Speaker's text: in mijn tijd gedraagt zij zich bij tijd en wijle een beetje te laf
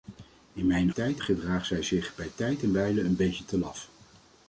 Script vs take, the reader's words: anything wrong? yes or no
no